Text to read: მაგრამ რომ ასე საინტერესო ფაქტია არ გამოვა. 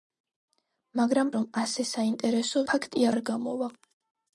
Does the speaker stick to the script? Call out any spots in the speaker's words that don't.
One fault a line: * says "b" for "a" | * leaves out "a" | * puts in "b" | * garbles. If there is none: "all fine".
all fine